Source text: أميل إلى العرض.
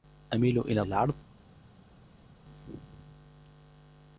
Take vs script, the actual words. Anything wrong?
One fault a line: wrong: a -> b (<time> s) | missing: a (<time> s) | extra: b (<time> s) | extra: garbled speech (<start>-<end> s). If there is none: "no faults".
no faults